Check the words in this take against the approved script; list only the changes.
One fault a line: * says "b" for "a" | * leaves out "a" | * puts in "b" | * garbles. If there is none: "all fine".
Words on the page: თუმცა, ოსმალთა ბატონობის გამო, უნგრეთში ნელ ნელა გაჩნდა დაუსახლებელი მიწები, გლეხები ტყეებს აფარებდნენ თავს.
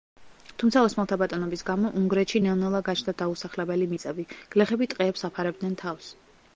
all fine